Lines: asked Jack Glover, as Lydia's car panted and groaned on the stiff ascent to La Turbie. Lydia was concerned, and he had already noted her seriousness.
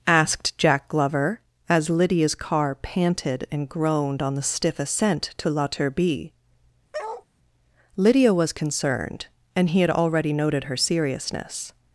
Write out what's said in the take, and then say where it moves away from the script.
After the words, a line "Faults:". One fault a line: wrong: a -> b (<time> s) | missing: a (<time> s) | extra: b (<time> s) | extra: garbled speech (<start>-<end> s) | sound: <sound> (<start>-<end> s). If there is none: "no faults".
asked Jack Glover, as Lydia's car panted and groaned on the stiff ascent to La Turbie. Lydia was concerned, and he had already noted her seriousness.
Faults:
sound: bark (6.9-7.3 s)